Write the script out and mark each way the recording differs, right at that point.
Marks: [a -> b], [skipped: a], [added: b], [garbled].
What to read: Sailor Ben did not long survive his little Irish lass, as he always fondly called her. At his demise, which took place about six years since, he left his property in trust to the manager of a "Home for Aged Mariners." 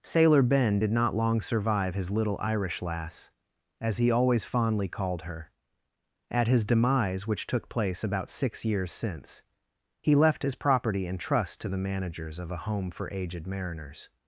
Sailor Ben did not long survive his little Irish lass, as he always fondly called her. At his demise, which took place about six years since, he left his property in trust to the [manager -> managers] of a "Home for Aged Mariners."